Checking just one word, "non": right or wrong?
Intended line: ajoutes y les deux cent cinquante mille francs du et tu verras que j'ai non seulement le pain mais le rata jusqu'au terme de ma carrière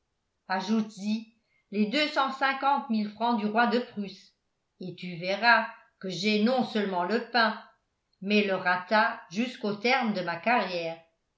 right